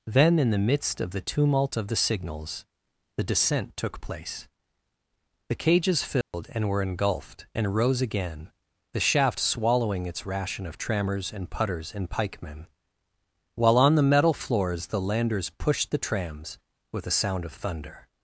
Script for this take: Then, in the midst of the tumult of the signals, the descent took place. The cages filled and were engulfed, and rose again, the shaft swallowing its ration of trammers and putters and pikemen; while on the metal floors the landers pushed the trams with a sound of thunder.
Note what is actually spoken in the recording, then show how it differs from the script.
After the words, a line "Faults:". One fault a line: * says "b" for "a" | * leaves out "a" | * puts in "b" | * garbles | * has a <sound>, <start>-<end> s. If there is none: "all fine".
Then, in the midst of the tumult of the signals, the descent took place. The cages filled and were engulfed, and rose again, the shaft swallowing its ration of trammers and putters and pikemen; while on the metal floors the landers pushed the trams with a sound of thunder.
Faults:
* has a dropout, 6.2-6.3 s